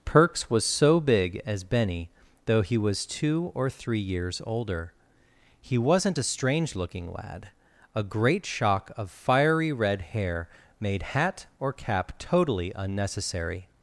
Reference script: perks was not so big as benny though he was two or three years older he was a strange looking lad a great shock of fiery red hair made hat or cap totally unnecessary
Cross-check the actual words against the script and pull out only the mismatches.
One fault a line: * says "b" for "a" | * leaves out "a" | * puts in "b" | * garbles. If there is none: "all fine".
* leaves out "not"
* says "wasn't" for "was"